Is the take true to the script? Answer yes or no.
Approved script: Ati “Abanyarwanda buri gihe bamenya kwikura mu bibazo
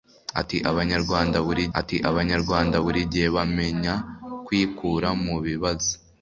no